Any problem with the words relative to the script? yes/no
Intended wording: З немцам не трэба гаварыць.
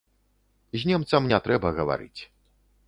no